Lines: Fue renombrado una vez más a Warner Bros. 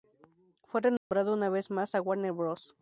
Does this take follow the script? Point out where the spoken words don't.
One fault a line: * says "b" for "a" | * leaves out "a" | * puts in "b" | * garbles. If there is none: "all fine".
all fine